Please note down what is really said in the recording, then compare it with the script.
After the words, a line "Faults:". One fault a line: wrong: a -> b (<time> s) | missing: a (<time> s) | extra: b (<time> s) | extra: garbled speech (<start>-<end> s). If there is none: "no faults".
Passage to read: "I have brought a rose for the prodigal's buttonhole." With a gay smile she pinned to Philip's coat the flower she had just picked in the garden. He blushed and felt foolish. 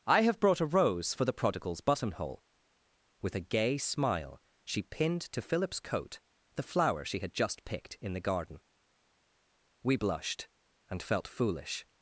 "I have brought a rose for the prodigal's buttonhole." With a gay smile she pinned to Philip's coat the flower she had just picked in the garden. We blushed and felt foolish.
Faults:
wrong: He -> We (9.8 s)